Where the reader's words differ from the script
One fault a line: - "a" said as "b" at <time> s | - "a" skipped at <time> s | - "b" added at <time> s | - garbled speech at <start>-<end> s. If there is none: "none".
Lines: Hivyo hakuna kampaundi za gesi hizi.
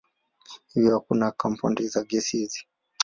none